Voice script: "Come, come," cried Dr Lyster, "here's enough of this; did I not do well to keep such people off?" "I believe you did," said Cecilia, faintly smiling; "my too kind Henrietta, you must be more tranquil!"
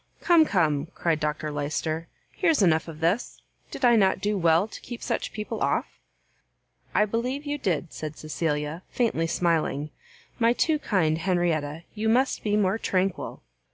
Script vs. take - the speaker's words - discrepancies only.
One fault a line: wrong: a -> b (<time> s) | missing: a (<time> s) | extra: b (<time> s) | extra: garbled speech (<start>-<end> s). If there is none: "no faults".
no faults